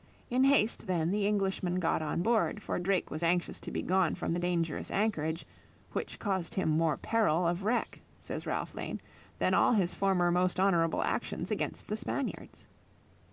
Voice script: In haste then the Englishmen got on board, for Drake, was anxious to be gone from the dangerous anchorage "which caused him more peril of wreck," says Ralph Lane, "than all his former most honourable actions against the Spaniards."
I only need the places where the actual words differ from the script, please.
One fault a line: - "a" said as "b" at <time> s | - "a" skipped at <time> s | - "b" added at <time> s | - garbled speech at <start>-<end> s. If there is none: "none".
none